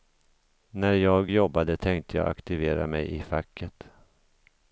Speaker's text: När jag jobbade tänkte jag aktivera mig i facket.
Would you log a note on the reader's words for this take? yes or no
no